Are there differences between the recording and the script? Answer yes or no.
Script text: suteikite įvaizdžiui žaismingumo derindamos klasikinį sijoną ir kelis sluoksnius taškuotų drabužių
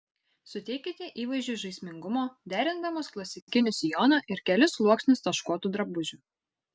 no